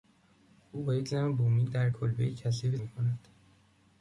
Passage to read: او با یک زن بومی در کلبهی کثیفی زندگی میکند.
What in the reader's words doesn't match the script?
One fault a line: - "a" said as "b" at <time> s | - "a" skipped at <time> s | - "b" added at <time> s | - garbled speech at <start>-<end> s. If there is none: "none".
- "زندگی" skipped at 2.8 s